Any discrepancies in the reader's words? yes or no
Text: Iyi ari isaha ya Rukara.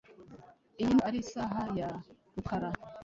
no